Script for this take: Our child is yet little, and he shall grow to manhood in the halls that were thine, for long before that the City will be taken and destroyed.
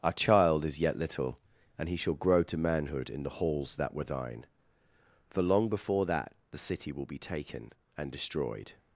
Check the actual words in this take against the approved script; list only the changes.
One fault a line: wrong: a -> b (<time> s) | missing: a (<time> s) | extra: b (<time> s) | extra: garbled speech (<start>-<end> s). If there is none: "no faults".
no faults